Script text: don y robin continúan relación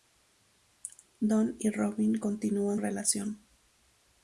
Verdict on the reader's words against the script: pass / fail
pass